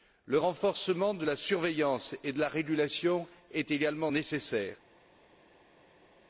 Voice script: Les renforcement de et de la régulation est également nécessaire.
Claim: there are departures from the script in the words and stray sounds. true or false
true